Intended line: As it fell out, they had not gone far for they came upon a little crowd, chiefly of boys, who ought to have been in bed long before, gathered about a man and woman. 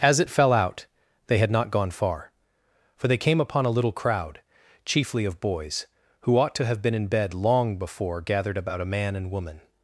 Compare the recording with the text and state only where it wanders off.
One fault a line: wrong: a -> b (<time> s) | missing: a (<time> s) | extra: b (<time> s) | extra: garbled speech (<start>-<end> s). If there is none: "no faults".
no faults